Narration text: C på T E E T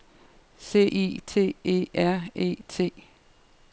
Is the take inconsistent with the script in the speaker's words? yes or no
yes